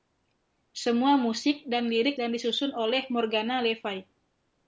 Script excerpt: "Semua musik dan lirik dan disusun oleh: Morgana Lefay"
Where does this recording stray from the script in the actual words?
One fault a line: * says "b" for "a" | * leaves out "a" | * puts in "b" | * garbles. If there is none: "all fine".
all fine